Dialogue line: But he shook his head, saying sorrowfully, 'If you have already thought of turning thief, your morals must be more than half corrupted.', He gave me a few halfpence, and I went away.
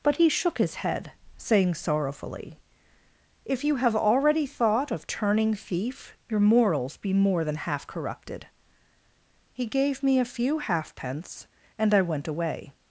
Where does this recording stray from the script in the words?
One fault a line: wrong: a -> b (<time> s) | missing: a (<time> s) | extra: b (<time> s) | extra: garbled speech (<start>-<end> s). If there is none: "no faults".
missing: must (7.0 s)